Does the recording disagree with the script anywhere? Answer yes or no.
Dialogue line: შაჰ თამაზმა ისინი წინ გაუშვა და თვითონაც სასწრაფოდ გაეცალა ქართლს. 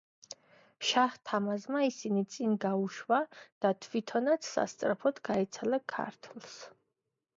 no